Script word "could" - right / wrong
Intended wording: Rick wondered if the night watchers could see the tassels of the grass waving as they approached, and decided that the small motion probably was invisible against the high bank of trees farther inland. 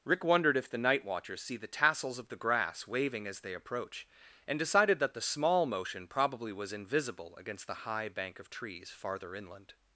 wrong